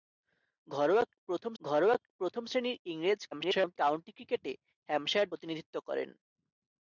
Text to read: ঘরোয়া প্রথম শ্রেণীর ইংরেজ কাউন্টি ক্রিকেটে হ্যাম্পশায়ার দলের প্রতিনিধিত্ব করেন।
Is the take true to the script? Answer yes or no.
no